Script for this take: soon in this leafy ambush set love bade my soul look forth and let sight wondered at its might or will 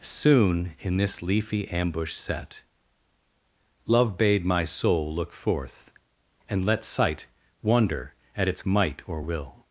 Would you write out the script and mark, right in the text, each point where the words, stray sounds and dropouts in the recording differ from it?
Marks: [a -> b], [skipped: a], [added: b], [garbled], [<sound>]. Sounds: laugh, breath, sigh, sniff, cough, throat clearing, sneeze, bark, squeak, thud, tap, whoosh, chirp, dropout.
soon in this leafy ambush set love bade my soul look forth and let sight [wondered -> wonder] at its might or will